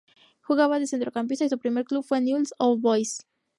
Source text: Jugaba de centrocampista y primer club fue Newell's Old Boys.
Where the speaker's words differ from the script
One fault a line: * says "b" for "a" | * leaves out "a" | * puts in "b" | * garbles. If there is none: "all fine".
* puts in "su"